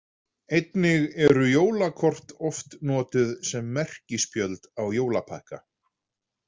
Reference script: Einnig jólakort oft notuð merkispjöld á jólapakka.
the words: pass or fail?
fail